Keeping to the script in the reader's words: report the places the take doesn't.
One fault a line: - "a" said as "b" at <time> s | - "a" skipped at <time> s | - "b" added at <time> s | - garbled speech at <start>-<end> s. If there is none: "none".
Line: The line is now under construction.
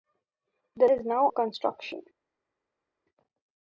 - "line" skipped at 0.9 s
- "under" skipped at 1.3 s